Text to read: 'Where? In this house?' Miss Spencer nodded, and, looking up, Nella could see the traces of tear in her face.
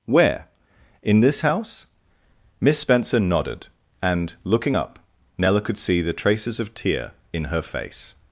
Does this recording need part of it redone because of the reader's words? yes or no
no